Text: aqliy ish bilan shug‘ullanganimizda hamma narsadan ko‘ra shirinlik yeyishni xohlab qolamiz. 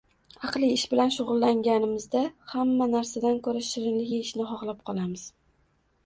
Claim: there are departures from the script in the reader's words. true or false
false